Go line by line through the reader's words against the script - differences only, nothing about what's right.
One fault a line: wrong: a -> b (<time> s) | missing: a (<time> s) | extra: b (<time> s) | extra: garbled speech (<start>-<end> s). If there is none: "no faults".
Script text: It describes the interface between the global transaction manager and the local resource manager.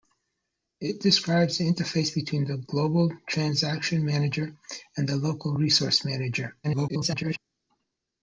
extra: garbled speech (6.6-7.4 s)